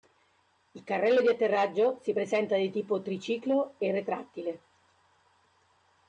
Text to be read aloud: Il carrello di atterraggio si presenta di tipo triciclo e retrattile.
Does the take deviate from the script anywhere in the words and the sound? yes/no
no